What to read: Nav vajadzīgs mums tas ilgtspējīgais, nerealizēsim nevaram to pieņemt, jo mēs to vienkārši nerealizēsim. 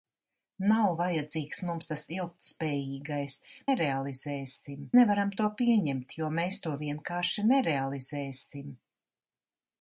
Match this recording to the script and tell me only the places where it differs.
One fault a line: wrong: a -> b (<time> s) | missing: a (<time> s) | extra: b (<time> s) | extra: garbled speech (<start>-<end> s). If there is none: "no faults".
no faults